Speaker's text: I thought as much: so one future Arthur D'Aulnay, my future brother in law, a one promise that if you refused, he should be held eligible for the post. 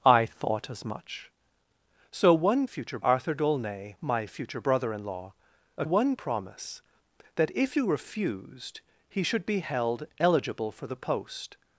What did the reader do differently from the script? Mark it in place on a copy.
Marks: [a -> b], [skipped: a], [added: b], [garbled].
I thought as much: so one future Arthur D'Aulnay, my future brother in law, a one promise that if you refused, he should be held eligible for the post.